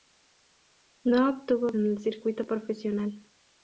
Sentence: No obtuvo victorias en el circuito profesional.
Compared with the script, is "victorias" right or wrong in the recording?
wrong